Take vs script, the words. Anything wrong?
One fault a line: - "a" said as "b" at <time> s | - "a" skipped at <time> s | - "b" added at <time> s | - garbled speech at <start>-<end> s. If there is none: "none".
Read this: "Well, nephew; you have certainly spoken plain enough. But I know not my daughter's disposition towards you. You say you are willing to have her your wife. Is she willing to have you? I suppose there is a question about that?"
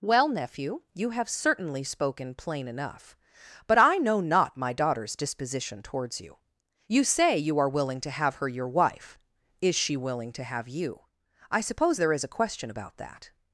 none